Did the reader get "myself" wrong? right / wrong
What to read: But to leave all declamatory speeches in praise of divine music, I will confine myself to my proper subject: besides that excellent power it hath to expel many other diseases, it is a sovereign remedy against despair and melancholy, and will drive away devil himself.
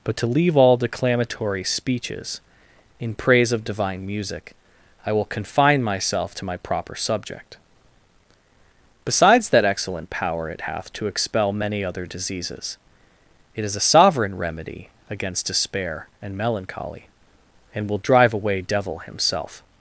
right